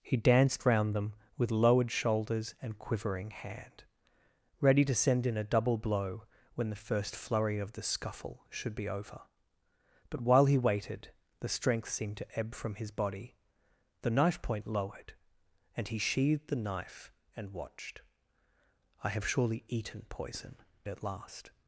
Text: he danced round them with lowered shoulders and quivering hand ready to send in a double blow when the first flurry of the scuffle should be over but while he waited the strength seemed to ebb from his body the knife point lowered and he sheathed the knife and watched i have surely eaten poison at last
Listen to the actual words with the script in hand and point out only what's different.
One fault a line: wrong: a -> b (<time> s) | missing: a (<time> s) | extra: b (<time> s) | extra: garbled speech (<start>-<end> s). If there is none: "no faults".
no faults